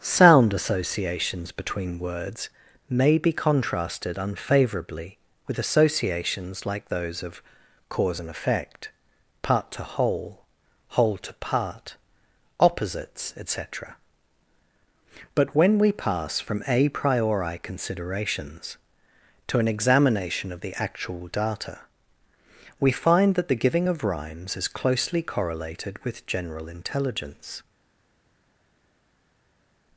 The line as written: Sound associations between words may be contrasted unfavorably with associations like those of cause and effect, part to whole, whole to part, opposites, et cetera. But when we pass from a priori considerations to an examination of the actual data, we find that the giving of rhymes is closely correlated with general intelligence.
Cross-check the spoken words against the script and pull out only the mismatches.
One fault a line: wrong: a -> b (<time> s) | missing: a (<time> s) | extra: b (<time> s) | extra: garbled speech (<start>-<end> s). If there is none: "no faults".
no faults